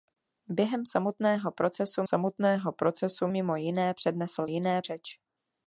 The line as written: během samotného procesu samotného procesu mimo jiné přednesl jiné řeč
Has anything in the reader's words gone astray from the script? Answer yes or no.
no